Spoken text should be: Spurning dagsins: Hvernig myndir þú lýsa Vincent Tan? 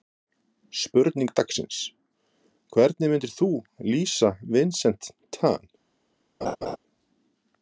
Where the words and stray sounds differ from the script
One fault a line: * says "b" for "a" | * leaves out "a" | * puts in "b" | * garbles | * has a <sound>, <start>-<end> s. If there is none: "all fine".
* has a laugh, 6.4-6.8 s